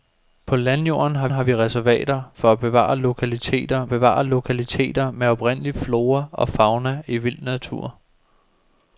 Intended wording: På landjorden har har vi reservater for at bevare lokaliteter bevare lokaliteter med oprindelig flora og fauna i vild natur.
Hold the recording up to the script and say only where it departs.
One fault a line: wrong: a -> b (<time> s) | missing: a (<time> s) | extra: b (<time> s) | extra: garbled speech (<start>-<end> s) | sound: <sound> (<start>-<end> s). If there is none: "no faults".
no faults